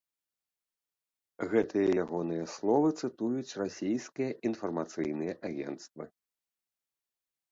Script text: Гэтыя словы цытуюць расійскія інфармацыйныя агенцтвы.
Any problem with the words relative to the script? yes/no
yes